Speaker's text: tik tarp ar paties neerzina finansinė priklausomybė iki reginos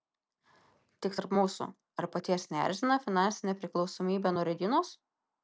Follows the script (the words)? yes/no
no